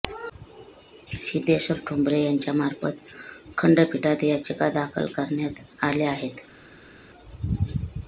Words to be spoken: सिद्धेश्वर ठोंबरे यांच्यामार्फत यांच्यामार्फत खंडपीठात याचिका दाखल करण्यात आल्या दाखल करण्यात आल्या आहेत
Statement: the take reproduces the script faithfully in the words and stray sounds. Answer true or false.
false